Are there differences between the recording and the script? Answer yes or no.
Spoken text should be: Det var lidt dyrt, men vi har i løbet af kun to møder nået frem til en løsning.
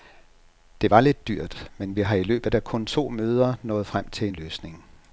no